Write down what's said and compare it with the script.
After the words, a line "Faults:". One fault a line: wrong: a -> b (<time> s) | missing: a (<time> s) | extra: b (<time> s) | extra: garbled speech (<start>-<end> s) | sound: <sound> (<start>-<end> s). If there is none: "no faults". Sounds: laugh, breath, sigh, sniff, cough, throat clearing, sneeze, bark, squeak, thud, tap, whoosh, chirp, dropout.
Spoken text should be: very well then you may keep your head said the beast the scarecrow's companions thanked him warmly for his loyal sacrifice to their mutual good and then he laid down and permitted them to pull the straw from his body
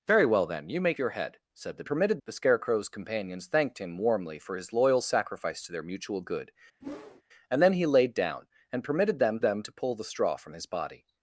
very well then you may your head said the permitted the scarecrow's companions thanked him warmly for his loyal sacrifice to their mutual good and then he laid down and permitted them them to pull the straw from his body
Faults:
missing: keep (0.9 s)
wrong: beast -> permitted (1.9 s)
sound: whoosh (6.8-7.2 s)
extra: them (9.4 s)